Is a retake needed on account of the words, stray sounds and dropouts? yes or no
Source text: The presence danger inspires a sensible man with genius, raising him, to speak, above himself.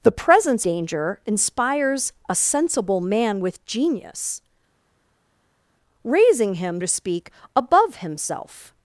no